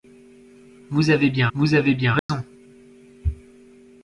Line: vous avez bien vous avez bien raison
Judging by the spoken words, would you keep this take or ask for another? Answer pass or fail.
pass